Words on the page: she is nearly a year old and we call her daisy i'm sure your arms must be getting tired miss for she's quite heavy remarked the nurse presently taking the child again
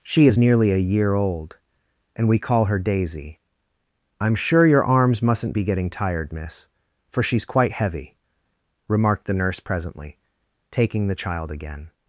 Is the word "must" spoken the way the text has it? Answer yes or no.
no